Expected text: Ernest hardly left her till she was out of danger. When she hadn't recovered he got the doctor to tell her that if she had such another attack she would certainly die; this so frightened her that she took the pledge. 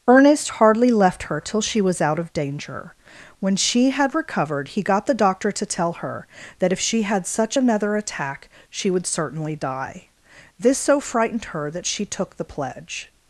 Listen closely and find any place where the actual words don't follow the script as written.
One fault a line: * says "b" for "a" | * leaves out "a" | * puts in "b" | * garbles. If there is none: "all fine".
* says "had" for "hadn't"